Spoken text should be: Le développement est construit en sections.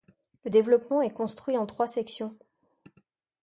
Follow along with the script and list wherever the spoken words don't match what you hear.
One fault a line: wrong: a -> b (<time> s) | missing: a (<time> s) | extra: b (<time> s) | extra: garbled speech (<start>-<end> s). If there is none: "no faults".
extra: trois (1.7 s)